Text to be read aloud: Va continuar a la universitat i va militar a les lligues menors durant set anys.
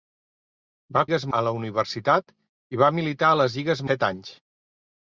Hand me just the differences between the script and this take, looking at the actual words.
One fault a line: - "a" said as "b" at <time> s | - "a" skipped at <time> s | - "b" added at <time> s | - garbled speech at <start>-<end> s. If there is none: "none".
- "continuar" said as "lligues" at 1.0 s
- "menors durant" skipped at 3.9 s